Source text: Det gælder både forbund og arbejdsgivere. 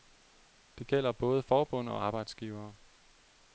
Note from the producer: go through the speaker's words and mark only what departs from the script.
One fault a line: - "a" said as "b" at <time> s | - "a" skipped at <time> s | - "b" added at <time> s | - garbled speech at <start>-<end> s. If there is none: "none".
none